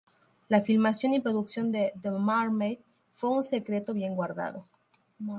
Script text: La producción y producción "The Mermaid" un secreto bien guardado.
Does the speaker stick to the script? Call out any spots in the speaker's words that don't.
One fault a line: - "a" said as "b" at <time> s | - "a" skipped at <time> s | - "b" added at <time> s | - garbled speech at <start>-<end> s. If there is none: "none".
- "producción" said as "filmación" at 0.6 s
- "de" added at 1.7 s
- "fue" added at 3.1 s